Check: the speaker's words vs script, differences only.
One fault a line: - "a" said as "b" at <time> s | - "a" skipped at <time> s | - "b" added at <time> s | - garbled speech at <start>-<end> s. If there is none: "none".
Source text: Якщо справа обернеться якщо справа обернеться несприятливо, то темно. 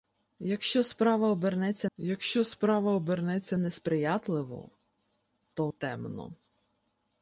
none